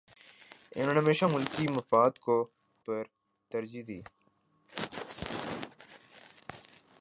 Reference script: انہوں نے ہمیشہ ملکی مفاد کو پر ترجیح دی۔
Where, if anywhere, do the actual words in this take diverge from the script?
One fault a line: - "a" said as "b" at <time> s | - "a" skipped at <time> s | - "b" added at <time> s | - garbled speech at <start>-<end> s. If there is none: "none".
none